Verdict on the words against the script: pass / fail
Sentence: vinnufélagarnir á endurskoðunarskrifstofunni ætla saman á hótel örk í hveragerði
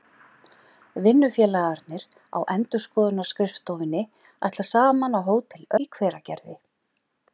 fail